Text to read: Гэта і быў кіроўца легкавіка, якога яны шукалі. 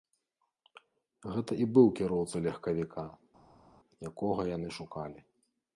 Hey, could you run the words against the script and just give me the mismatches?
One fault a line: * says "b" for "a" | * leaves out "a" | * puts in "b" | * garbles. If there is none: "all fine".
all fine